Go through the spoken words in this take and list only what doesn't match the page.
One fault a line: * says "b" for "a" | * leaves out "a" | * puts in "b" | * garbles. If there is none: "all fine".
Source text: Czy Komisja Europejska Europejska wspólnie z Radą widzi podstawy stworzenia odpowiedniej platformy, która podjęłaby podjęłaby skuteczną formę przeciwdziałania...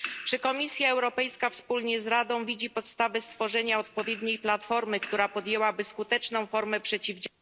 * leaves out "Europejska"
* leaves out "podjęłaby"